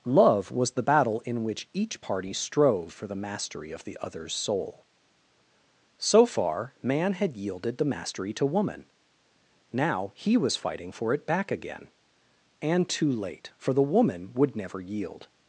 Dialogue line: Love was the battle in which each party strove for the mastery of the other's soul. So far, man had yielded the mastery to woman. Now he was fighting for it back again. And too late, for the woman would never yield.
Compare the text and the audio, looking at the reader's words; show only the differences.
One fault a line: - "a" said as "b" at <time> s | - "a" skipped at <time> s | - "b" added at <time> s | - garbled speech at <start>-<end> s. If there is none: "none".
none